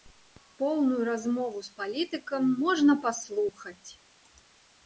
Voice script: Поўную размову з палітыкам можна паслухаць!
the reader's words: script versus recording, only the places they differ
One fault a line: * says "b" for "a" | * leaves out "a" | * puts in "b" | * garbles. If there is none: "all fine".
all fine